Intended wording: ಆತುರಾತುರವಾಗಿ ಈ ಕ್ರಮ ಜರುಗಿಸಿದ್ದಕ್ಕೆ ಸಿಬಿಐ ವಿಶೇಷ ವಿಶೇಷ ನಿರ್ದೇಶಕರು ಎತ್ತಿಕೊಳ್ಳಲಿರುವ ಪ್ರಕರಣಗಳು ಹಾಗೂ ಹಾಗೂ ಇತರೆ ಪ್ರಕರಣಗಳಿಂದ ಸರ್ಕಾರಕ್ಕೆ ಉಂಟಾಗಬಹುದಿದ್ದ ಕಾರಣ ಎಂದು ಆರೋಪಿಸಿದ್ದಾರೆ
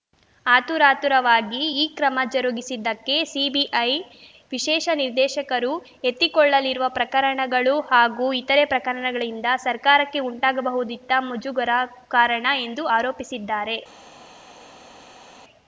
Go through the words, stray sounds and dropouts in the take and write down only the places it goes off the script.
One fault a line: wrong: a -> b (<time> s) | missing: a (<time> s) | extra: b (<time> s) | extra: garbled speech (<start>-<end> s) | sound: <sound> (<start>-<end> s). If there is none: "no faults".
missing: ವಿಶೇಷ (4.9 s)
missing: ಹಾಗೂ (8.3 s)
extra: ಮುಜುಗರ (11.3 s)